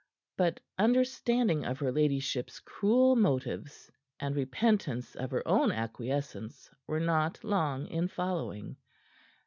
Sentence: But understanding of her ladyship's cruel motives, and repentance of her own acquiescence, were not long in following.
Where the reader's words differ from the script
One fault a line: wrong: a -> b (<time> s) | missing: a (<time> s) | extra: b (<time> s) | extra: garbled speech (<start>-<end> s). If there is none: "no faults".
no faults